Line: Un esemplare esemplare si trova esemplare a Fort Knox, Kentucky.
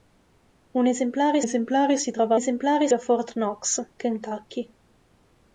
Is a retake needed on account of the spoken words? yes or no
no